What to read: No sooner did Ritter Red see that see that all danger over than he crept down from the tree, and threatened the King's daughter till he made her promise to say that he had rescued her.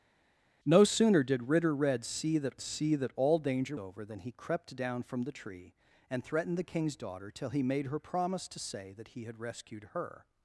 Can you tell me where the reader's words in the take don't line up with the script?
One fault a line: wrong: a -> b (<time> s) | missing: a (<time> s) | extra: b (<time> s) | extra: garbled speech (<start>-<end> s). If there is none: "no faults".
no faults